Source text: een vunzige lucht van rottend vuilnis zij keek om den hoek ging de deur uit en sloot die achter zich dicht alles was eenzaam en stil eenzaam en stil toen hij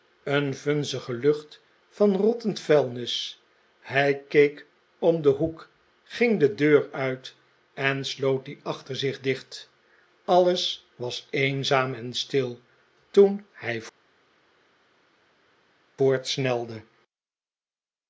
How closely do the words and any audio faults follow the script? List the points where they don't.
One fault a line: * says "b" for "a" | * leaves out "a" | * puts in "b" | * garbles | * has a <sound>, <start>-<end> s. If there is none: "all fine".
* says "hij" for "zij"
* leaves out "eenzaam en stil"